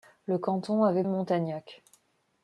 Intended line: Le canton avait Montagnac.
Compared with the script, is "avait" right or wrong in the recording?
right